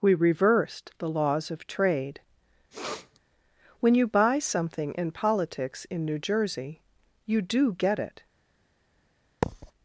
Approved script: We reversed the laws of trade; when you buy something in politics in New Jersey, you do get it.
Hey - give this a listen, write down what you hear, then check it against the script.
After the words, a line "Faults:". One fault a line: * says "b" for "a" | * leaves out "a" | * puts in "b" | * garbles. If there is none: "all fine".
We reversed the laws of trade; when you buy something in politics in New Jersey, you do get it.
Faults:
all fine